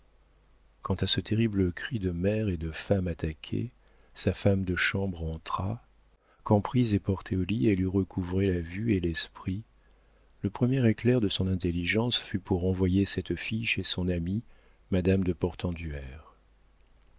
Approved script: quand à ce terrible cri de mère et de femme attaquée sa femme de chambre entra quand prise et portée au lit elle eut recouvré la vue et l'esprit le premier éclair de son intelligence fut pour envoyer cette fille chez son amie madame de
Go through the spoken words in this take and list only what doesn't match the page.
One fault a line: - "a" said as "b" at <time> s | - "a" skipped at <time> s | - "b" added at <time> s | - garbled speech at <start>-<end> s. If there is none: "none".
none